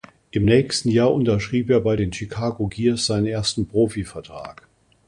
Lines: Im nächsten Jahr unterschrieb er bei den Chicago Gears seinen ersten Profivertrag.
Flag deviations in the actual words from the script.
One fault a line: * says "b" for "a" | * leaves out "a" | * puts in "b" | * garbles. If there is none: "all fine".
all fine